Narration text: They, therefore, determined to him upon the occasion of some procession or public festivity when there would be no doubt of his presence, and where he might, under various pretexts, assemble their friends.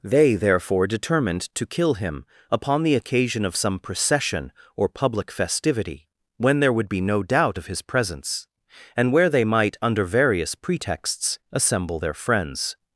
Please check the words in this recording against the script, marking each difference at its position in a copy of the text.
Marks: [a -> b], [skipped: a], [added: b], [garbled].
They, therefore, determined to [added: kill] him upon the occasion of some procession or public festivity when there would be no doubt of his presence, and where [he -> they] might, under various pretexts, assemble their friends.